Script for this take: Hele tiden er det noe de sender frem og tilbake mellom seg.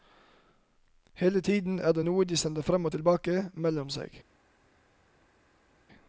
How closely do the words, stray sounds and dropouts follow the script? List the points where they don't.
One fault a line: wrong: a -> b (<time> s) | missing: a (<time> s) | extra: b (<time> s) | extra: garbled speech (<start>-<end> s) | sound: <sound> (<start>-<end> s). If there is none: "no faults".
no faults